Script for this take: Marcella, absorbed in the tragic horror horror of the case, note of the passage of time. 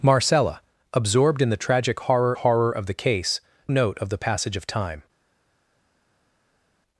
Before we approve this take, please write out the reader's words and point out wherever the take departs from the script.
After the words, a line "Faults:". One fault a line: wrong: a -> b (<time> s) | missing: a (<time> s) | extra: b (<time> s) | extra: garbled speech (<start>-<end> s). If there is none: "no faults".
Marcella, absorbed in the tragic horror horror of the case, note of the passage of time.
Faults:
no faults